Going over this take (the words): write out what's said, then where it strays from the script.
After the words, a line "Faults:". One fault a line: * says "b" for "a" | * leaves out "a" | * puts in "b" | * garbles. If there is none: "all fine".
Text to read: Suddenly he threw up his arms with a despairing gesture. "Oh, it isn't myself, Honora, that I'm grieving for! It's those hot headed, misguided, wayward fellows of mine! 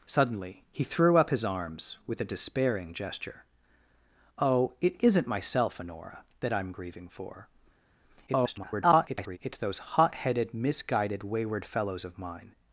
Suddenly he threw up his arms with a despairing gesture. "Oh, it isn't myself, Honora, that I'm grieving for! [garbled] It's those hot headed, misguided, wayward fellows of mine!
Faults:
* garbles